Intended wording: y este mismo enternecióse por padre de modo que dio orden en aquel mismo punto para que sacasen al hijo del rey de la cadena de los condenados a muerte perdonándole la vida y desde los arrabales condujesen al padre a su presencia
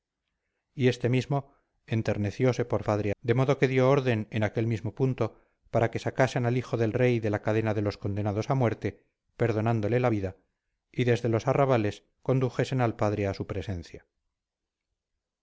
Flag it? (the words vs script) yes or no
no